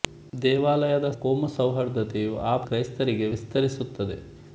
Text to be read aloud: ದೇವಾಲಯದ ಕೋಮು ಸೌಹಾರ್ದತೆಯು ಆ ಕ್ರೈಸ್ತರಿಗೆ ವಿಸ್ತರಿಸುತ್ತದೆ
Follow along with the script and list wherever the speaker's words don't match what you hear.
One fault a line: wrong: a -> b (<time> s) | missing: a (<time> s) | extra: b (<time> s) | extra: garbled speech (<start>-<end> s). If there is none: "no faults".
no faults